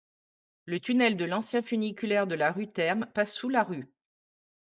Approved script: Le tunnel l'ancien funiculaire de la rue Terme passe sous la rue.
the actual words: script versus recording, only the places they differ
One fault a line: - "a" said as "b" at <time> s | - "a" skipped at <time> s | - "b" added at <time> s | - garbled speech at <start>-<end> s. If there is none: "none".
- "de" added at 1.1 s